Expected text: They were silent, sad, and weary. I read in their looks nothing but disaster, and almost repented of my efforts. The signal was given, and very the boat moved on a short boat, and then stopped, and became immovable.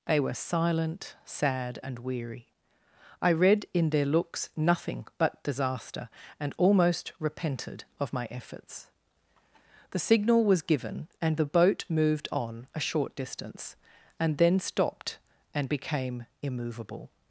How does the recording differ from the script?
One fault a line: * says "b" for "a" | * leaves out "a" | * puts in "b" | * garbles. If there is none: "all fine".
* leaves out "very"
* says "distance" for "boat"